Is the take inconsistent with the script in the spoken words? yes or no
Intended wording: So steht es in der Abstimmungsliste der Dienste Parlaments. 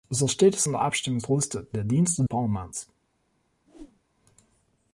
no